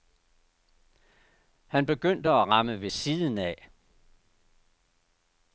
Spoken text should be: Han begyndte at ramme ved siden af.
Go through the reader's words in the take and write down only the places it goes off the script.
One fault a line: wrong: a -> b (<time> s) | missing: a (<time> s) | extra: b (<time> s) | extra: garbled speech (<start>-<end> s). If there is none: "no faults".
no faults